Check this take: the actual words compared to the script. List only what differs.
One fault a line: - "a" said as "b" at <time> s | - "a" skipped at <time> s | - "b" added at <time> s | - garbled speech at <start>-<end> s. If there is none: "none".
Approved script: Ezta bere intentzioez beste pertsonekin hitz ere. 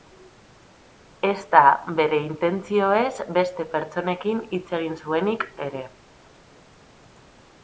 - "egin zuenik" added at 4.8 s